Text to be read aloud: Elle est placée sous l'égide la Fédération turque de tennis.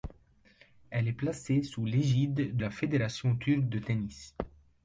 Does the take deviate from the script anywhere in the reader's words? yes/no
no